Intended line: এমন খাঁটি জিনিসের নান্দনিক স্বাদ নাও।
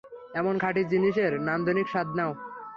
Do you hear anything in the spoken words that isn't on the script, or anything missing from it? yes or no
no